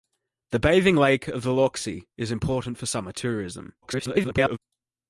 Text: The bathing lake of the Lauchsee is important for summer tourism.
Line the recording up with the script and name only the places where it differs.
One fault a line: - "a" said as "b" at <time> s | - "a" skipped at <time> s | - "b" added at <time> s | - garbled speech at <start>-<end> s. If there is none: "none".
- garbled speech at 3.8-4.6 s